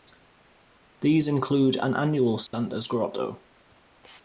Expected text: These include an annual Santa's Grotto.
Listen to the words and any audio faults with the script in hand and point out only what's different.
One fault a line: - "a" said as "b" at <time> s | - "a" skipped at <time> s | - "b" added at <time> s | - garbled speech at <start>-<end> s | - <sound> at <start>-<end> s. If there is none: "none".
- dropout at 2.5-2.5 s